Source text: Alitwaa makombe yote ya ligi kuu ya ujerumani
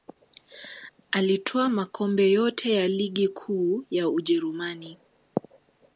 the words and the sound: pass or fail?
pass